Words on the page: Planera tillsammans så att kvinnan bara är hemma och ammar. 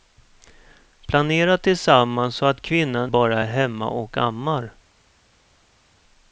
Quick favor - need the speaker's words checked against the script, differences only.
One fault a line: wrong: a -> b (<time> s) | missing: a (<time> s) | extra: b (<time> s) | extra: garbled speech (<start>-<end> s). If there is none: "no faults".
no faults